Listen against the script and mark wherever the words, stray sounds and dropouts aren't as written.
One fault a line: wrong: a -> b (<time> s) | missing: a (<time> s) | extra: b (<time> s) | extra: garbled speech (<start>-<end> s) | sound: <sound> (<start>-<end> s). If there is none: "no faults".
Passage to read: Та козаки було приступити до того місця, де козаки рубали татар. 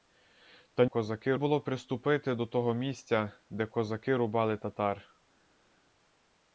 no faults